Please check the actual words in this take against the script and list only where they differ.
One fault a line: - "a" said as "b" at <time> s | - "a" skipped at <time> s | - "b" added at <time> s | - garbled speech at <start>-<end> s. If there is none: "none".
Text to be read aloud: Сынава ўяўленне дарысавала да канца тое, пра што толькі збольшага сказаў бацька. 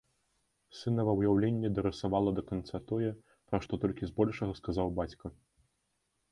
none